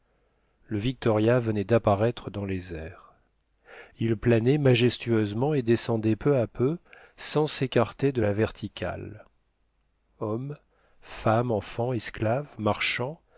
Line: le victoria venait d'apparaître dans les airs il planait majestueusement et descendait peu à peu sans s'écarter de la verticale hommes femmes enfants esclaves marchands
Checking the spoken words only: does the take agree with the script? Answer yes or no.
yes